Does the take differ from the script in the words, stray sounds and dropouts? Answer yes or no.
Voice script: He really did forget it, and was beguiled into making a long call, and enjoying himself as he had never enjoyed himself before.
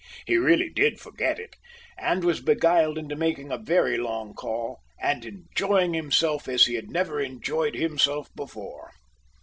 yes